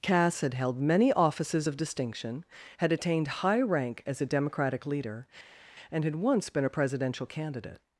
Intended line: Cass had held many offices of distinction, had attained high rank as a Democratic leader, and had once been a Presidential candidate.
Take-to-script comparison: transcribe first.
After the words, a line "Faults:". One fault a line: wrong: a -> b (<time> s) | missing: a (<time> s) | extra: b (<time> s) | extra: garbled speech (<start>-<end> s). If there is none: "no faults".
Cass had held many offices of distinction, had attained high rank as a Democratic leader, and had once been a Presidential candidate.
Faults:
no faults